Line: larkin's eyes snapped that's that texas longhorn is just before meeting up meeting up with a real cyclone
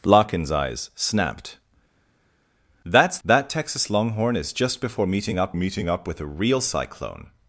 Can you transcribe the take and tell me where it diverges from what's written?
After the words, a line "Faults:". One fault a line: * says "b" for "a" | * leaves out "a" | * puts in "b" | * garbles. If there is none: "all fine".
larkin's eyes snapped that's that texas longhorn is just before meeting up meeting up with a real cyclone
Faults:
all fine